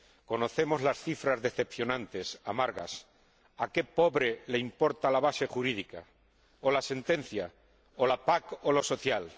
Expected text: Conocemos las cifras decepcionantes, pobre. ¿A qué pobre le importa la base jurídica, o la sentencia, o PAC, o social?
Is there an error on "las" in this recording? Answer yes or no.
no